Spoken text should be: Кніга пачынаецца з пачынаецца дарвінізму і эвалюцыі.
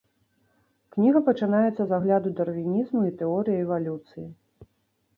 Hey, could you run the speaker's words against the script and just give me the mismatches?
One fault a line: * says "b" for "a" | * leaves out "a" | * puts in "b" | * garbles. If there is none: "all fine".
* says "агляду" for "пачынаецца"
* puts in "тэорыі"